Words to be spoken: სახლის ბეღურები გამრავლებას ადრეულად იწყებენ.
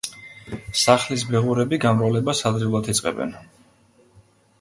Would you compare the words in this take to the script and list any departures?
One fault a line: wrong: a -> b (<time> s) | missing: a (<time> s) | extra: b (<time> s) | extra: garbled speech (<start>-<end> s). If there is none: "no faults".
no faults